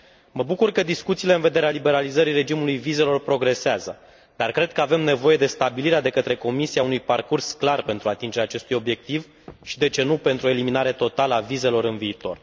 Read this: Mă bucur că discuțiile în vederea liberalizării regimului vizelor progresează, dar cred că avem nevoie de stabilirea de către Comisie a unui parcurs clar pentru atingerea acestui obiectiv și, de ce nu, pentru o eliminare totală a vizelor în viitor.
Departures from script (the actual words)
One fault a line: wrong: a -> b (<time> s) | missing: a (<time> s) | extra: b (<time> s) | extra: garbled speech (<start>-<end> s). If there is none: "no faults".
no faults